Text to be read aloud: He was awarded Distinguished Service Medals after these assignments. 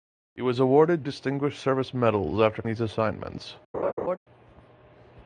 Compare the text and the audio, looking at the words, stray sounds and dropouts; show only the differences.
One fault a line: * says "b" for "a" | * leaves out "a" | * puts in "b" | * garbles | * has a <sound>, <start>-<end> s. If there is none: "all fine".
* has a laugh, 3.7-4.2 s